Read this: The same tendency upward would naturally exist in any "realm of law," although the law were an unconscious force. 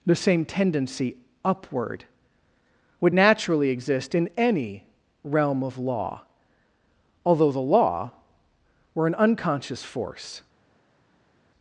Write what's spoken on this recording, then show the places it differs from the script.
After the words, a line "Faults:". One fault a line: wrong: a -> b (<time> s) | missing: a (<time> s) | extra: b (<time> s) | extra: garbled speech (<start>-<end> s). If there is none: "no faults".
The same tendency upward would naturally exist in any "realm of law," although the law were an unconscious force.
Faults:
no faults